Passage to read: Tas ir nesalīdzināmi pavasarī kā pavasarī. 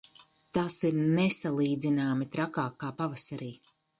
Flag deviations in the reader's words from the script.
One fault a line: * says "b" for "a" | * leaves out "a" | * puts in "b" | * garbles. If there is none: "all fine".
* says "trakāk" for "pavasarī"